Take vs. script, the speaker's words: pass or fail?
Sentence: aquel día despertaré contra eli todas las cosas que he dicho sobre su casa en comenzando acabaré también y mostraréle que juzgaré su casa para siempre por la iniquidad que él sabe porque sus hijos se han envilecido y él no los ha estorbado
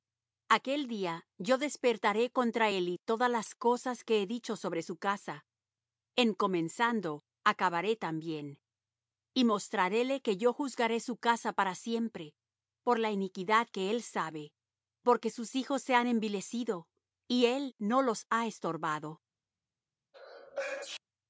fail